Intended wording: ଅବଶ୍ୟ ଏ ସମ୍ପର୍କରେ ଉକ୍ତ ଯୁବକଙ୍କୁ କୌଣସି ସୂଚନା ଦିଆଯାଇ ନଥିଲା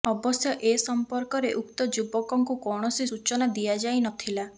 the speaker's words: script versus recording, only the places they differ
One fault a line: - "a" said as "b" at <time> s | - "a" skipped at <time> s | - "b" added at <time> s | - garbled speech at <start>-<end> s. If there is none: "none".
none